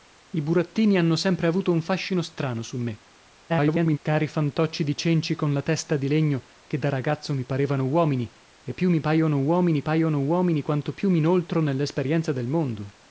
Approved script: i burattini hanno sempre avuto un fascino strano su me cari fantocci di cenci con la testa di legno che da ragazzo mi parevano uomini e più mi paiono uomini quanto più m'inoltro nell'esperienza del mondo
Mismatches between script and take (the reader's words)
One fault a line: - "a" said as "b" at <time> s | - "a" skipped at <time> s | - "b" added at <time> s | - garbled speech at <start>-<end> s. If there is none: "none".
- garbled speech at 3.5-4.0 s
- "paiono uomini" added at 9.8 s